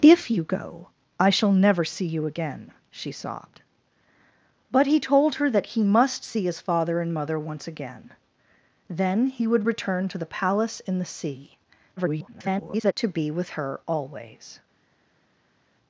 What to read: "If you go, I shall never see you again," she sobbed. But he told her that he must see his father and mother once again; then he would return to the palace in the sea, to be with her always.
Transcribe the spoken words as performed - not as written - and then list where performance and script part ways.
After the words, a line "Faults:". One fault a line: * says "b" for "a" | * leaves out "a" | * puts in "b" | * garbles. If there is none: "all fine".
"If you go, I shall never see you again," she sobbed. But he told her that he must see his father and mother once again; then he would return to the palace in the sea, [garbled] to be with her always.
Faults:
* garbles